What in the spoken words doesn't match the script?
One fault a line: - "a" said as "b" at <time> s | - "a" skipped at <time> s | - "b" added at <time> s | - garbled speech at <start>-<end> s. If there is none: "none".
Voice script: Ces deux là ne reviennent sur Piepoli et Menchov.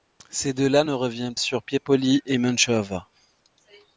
none